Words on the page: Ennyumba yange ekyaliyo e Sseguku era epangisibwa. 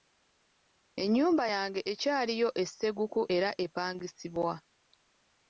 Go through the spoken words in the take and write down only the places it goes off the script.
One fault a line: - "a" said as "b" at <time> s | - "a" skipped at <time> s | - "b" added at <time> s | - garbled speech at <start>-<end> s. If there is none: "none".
none